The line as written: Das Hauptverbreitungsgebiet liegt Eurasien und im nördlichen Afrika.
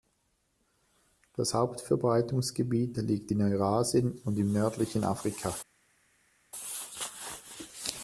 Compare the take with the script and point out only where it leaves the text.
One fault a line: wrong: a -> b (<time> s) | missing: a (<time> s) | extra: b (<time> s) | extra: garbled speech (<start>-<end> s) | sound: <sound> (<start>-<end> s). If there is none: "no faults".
extra: in (3.3 s)